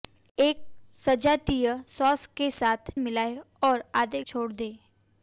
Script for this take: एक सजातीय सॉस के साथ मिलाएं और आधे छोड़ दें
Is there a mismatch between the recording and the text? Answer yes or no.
no